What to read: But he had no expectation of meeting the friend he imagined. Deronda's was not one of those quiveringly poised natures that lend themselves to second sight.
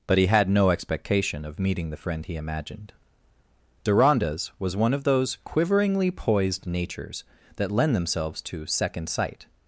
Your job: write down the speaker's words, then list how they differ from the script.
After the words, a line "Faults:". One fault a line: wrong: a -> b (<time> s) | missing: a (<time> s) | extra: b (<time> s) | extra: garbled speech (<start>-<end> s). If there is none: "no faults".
But he had no expectation of meeting the friend he imagined. Deronda's was one of those quiveringly poised natures that lend themselves to second sight.
Faults:
missing: not (4.8 s)